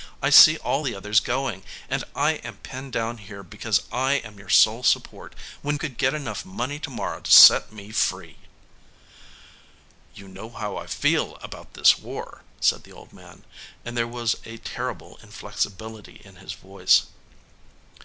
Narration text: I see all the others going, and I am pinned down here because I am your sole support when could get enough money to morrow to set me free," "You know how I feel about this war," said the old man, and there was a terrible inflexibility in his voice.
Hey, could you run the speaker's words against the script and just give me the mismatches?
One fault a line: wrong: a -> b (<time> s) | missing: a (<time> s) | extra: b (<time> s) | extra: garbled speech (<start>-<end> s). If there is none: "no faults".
no faults